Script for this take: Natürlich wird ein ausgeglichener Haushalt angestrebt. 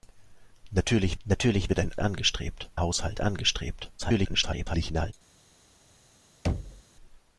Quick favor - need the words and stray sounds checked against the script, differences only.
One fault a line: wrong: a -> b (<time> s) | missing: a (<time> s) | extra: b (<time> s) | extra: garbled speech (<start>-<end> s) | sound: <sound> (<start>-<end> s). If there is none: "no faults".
extra: natürlich (1.3 s)
wrong: ausgeglichener -> angestrebt (2.0 s)
extra: garbled speech (4.0-5.1 s)
sound: thud (6.4-6.8 s)